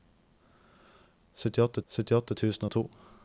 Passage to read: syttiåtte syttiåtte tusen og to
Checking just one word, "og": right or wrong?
right